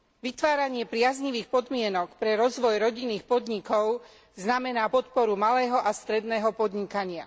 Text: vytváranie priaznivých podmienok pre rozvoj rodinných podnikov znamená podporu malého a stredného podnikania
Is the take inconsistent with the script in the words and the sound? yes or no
no